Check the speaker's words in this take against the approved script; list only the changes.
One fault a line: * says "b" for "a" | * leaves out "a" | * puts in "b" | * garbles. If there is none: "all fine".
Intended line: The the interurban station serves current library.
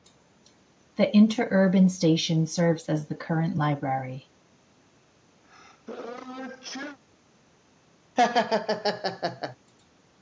* leaves out "the"
* puts in "as the"